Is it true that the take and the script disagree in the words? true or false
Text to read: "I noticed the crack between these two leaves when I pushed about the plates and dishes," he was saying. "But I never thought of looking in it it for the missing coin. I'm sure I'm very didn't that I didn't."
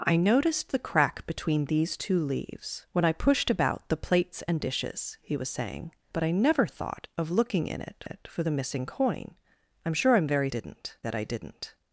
false